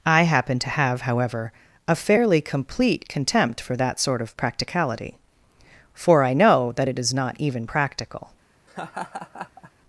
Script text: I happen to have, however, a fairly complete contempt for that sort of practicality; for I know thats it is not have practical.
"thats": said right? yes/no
no